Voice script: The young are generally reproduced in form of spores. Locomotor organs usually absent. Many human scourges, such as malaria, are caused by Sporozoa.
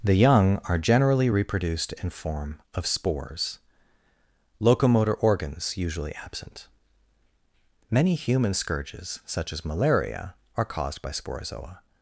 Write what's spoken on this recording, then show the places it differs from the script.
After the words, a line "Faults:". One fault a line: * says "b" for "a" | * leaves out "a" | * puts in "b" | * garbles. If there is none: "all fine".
The young are generally reproduced in form of spores. Locomotor organs usually absent. Many human scourges, such as malaria, are caused by Sporozoa.
Faults:
all fine